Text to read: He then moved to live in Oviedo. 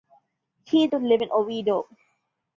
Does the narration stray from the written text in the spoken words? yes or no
yes